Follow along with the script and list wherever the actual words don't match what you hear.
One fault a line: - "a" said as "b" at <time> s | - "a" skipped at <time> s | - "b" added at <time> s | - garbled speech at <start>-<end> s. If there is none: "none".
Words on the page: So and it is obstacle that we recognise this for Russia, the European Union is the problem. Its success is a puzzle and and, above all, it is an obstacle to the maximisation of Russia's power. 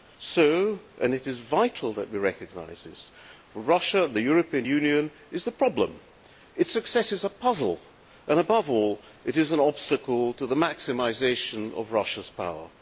- "obstacle" said as "vital" at 1.4 s
- "and" skipped at 8.4 s